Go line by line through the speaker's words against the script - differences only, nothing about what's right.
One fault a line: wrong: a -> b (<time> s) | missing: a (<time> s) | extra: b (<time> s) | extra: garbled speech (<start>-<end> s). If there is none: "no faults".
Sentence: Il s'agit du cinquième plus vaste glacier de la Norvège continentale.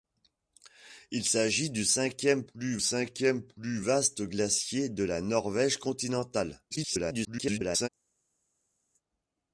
extra: cinquième plus (2.8 s)
extra: garbled speech (6.7-7.9 s)